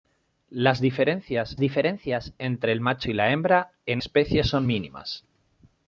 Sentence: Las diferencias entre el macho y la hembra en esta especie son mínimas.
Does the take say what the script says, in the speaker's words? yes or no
no